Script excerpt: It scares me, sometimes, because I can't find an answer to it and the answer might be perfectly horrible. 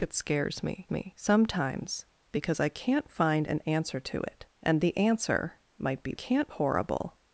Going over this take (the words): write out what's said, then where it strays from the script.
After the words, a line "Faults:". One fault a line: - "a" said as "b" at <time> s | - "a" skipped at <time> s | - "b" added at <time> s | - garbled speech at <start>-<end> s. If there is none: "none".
It scares me me, sometimes, because I can't find an answer to it and the answer might be can't horrible.
Faults:
- "me" added at 0.9 s
- "perfectly" said as "can't" at 6.1 s